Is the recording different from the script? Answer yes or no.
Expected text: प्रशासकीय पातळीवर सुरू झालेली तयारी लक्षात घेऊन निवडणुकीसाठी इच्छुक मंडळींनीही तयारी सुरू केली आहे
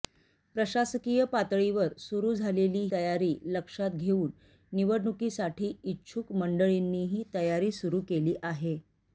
no